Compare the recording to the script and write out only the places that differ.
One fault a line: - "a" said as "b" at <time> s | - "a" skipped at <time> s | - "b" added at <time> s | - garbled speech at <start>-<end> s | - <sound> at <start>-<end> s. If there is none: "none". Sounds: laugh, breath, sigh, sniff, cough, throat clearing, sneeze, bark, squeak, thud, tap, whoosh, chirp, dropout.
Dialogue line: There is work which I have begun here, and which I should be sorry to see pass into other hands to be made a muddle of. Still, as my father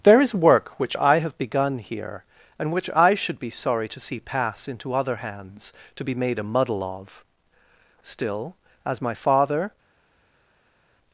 none